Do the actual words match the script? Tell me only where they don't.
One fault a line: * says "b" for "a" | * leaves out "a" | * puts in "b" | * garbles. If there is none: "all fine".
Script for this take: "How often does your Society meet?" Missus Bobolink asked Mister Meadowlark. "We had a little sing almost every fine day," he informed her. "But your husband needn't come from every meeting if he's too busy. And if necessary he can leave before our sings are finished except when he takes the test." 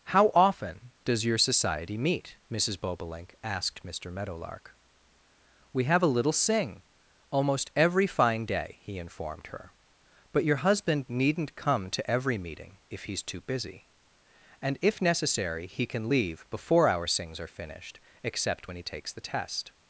* says "have" for "had"
* says "to" for "from"